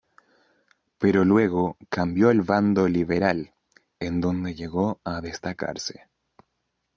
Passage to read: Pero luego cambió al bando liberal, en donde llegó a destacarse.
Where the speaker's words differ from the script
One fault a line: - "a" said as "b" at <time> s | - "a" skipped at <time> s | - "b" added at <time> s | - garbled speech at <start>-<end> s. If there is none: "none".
none